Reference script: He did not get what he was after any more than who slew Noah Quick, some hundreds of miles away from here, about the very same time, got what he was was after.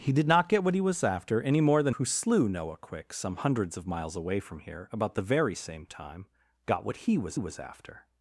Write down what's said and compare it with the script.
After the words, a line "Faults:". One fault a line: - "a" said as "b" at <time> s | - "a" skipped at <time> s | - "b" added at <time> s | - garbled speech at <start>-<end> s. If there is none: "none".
He did not get what he was after any more than who slew Noah Quick, some hundreds of miles away from here, about the very same time, got what he was was after.
Faults:
none